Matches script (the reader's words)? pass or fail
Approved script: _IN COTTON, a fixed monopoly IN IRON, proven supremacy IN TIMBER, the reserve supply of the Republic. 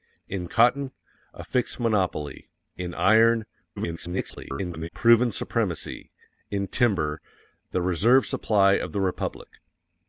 fail